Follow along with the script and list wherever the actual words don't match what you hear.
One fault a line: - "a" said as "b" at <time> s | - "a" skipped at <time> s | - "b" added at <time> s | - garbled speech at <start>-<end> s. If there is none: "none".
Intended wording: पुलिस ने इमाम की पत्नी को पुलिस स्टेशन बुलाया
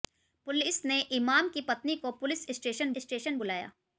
- "स्टेशन" added at 3.0 s